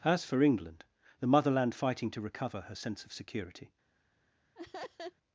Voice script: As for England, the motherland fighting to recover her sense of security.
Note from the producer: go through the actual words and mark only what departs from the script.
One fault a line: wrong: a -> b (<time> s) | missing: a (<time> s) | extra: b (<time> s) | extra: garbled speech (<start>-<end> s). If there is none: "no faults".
no faults